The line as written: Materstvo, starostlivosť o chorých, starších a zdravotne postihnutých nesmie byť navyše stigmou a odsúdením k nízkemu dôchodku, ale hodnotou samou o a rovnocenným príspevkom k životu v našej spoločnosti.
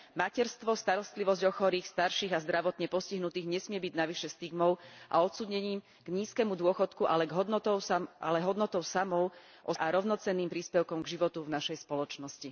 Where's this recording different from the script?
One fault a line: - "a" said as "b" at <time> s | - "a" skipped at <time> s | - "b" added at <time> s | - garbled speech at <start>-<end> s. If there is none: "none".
none